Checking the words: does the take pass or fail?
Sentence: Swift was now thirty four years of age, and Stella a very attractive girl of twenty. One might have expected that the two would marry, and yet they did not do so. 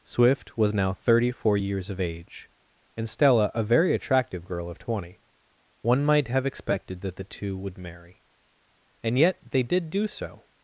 fail